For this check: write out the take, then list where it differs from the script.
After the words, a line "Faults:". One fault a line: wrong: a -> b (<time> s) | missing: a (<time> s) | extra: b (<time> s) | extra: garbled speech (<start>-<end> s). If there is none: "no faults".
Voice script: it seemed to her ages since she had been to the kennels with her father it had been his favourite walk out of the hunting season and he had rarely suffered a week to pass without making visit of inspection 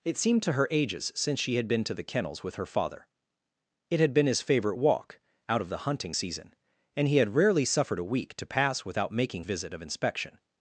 it seemed to her ages since she had been to the kennels with her father it had been his favourite walk out of the hunting season and he had rarely suffered a week to pass without making visit of inspection
Faults:
no faults